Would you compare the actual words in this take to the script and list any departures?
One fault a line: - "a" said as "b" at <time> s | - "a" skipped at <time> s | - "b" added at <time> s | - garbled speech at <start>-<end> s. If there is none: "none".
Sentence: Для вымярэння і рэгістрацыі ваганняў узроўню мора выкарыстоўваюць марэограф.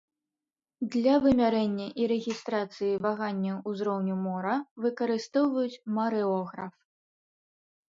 none